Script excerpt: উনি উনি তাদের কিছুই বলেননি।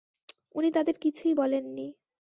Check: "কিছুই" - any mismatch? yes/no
no